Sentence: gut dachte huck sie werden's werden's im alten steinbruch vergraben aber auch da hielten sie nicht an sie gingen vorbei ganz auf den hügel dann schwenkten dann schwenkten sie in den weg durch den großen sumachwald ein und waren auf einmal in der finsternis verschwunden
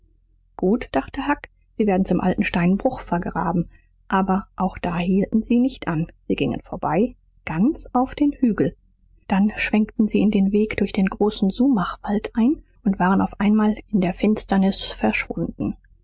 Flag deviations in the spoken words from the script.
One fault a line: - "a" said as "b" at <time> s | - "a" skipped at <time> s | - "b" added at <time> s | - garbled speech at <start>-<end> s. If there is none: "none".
- "werden's" skipped at 2.1 s
- "dann schwenkten" skipped at 10.1 s